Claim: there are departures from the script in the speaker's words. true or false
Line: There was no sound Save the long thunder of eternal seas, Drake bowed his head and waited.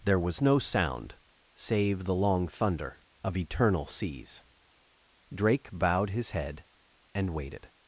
false